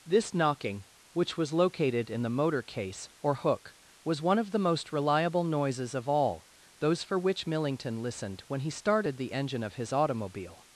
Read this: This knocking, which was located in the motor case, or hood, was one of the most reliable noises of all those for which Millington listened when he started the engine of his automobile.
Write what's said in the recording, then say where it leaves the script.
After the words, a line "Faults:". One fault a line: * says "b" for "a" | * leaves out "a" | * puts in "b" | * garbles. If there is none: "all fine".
This knocking, which was located in the motor case, or hook, was one of the most reliable noises of all those for which Millington listened when he started the engine of his automobile.
Faults:
* says "hook" for "hood"